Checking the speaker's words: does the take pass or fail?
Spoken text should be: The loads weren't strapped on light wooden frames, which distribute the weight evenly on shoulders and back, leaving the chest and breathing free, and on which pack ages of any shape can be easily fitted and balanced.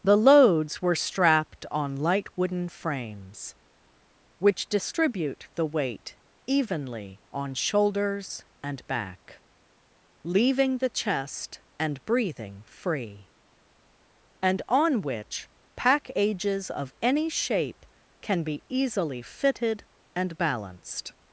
fail